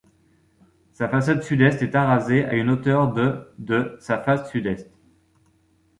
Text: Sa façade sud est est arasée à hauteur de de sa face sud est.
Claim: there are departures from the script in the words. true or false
true